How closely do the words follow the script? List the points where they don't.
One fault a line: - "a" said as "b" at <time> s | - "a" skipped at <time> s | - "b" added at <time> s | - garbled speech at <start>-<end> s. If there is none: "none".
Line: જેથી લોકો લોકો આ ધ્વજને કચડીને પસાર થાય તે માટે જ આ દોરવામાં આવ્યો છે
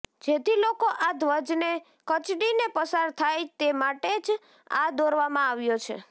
- "લોકો" skipped at 0.9 s